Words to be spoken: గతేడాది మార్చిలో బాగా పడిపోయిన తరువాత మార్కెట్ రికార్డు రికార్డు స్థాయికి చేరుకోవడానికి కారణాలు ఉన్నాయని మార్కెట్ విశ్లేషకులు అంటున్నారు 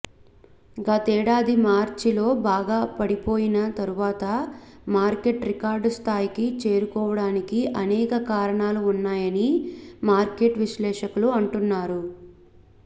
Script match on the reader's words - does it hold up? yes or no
no